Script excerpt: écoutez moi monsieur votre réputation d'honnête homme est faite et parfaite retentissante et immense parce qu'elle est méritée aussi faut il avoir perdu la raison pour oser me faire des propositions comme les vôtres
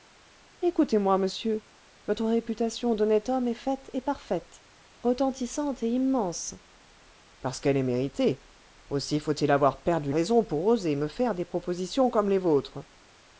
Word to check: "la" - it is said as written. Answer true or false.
false